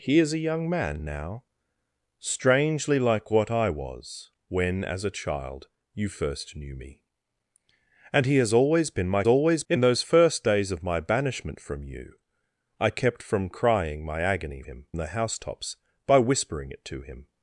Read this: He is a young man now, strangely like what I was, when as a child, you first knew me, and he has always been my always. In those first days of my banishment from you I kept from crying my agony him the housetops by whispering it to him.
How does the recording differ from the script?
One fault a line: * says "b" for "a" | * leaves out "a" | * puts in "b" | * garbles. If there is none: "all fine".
all fine